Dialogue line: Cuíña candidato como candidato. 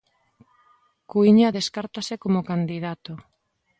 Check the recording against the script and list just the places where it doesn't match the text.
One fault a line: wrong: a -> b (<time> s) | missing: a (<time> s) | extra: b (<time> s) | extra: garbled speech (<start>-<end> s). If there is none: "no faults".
wrong: candidato -> descártase (1.6 s)